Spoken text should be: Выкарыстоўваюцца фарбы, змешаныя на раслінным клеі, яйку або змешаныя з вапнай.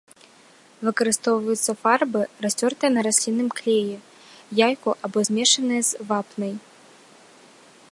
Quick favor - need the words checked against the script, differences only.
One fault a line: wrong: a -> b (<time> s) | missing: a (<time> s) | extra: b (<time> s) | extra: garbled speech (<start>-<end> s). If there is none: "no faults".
wrong: змешаныя -> расцёртыя (2.5 s)